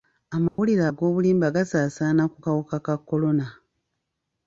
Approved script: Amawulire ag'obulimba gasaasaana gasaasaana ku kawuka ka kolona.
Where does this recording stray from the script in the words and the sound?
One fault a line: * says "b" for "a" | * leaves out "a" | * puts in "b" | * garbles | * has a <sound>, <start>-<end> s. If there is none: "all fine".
* has a dropout, 0.5-0.6 s
* leaves out "gasaasaana"